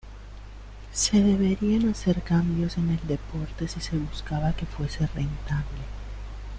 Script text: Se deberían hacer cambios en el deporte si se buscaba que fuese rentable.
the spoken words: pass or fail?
pass